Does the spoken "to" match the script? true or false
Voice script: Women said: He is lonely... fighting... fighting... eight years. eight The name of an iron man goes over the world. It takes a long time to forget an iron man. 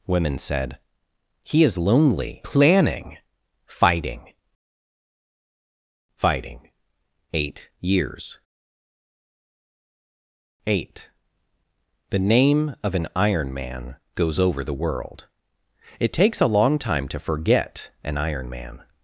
true